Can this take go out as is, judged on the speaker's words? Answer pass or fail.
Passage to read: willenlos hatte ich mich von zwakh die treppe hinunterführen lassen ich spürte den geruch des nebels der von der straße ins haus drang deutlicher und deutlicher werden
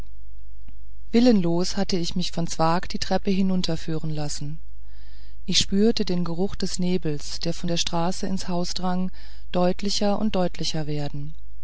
pass